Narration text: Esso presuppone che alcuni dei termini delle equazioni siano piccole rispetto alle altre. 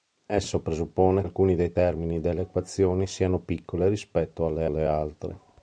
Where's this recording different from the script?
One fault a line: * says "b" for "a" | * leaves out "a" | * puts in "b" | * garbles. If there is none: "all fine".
* leaves out "che"
* puts in "alle"